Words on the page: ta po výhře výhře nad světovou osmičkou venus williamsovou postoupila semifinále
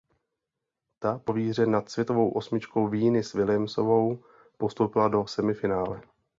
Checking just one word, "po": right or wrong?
right